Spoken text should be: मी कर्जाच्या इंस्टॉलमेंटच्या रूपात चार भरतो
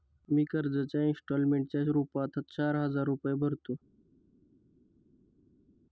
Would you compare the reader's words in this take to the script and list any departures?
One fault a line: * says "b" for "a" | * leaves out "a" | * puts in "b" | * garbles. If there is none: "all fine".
* puts in "हजार रुपये"